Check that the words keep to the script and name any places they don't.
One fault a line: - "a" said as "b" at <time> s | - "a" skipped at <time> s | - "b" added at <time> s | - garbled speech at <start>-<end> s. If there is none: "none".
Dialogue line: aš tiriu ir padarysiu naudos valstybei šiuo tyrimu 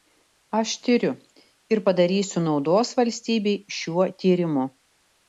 none